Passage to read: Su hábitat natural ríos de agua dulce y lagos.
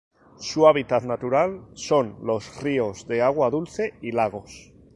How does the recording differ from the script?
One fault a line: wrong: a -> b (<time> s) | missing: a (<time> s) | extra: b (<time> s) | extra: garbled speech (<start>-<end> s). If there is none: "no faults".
extra: son los (1.8 s)